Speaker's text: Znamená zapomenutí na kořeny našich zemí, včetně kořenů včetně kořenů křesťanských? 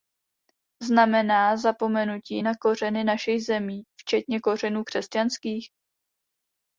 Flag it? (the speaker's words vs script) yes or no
yes